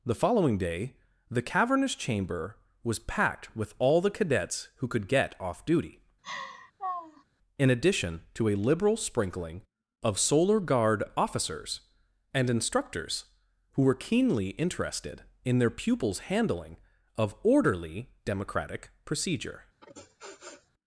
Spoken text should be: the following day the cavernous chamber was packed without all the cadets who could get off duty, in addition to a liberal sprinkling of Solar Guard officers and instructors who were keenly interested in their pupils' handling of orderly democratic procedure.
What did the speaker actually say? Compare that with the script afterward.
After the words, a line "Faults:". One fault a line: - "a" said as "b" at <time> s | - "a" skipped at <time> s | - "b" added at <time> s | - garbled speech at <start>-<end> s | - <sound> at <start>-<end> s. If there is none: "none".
the following day the cavernous chamber was packed with all the cadets who could get off duty, in addition to a liberal sprinkling of Solar Guard officers and instructors who were keenly interested in their pupils' handling of orderly democratic procedure.
Faults:
- "without" said as "with" at 3.5 s
- laugh at 6.2-7.2 s
- sniff at 19.8-20.7 s